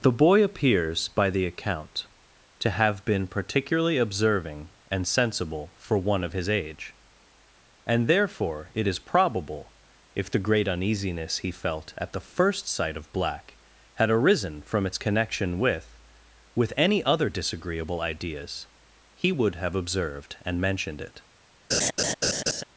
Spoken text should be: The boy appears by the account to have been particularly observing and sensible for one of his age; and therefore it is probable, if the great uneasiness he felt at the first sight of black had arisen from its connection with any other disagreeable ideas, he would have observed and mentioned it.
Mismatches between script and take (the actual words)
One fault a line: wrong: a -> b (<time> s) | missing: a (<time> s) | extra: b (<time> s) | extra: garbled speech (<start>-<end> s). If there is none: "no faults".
extra: with (16.6 s)